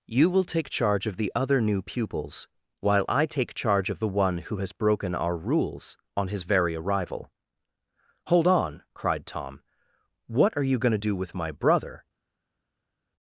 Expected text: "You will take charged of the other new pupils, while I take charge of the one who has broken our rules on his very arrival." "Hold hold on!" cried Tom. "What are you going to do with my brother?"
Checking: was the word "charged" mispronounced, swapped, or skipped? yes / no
yes